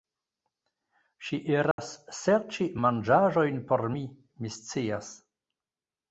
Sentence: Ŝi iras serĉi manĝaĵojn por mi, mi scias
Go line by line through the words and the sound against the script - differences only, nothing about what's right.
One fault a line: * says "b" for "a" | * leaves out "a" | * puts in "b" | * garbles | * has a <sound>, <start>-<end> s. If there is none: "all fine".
* has a dropout, 1.7-1.8 s